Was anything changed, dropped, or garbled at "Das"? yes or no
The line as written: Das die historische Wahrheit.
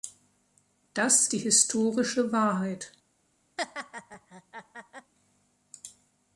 no